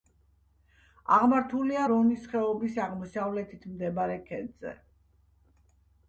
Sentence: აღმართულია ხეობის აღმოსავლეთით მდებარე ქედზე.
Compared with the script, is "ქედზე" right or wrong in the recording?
right